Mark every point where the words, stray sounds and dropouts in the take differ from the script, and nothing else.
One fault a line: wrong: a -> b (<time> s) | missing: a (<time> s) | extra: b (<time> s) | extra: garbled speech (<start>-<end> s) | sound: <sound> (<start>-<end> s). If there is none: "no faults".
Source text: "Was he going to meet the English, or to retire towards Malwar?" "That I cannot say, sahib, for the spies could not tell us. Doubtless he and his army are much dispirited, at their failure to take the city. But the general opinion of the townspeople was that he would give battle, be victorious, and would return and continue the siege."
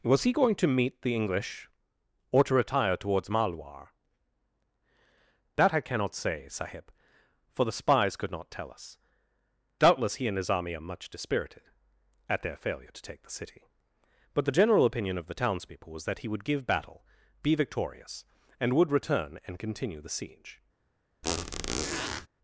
sound: squeak (21.2-22.3 s)